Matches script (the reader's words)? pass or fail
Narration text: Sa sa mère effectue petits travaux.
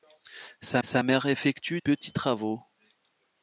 pass